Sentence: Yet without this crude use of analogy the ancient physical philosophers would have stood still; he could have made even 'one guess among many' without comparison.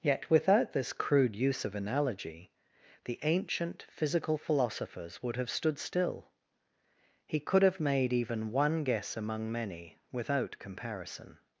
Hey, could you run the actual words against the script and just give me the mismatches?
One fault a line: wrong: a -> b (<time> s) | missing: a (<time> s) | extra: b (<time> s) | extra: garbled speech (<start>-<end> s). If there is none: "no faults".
no faults